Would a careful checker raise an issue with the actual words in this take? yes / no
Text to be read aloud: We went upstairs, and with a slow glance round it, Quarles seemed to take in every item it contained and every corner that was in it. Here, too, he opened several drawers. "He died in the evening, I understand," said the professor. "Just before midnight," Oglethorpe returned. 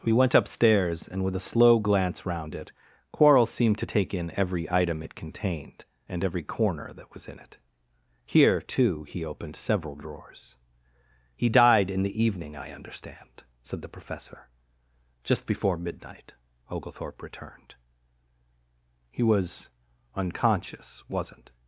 yes